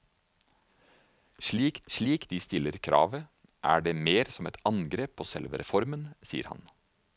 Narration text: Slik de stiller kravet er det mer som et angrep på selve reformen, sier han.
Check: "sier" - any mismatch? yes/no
no